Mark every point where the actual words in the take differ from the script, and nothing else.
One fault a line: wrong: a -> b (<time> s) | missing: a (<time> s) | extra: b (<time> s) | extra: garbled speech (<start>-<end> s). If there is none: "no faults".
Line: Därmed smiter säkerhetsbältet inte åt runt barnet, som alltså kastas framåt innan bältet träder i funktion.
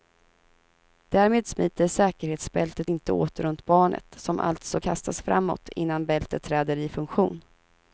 no faults